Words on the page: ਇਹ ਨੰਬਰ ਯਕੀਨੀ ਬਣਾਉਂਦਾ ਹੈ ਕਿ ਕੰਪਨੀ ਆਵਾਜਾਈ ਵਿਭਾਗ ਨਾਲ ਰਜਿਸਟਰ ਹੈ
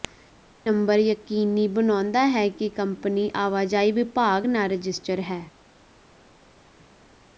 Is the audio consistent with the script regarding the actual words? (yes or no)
yes